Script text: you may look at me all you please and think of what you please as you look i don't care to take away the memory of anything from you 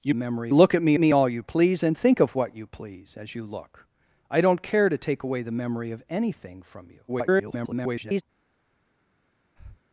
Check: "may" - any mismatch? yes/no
yes